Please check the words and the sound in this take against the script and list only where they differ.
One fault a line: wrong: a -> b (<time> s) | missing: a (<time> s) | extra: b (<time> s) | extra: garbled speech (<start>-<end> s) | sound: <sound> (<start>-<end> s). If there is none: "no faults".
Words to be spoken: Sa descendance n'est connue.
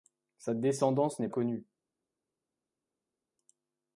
no faults